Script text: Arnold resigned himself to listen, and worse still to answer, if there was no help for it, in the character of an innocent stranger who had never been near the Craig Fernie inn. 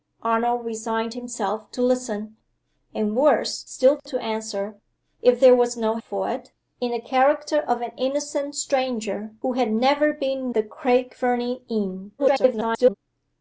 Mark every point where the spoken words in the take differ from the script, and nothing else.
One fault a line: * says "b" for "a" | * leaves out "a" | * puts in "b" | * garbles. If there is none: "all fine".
* leaves out "help"
* leaves out "near"
* garbles